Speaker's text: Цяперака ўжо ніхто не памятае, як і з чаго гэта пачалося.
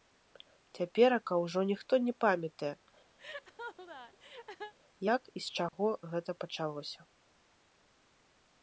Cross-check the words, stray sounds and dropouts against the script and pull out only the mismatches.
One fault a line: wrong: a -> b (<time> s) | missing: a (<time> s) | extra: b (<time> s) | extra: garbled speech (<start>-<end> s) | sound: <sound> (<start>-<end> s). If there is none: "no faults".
sound: laugh (3.2-4.7 s)
sound: dropout (5.7-5.7 s)